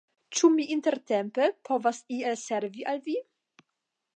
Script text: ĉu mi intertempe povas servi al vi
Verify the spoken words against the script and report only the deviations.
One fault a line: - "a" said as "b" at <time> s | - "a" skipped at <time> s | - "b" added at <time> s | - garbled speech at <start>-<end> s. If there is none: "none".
- "iel" added at 2.2 s